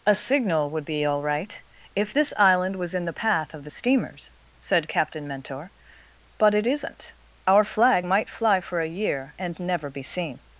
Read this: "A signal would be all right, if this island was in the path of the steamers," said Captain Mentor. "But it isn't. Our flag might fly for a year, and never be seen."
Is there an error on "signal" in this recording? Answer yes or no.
no